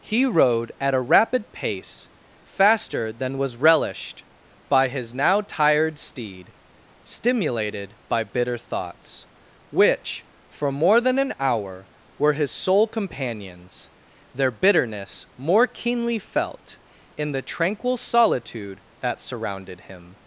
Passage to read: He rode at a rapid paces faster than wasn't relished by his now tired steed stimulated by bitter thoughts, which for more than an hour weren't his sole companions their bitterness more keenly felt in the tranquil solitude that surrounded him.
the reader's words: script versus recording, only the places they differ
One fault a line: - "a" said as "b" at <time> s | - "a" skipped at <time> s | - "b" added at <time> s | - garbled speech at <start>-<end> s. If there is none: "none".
- "paces" said as "pace" at 1.5 s
- "wasn't" said as "was" at 3.4 s
- "weren't" said as "were" at 12.2 s